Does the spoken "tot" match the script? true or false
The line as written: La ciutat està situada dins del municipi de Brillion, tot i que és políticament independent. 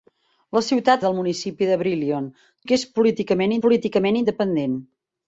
false